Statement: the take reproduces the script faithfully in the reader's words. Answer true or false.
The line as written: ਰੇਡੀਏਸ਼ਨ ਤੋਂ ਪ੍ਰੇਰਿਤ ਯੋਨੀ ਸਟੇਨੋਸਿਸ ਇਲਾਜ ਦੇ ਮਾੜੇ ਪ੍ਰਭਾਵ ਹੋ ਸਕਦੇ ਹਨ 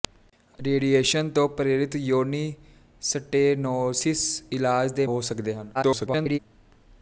false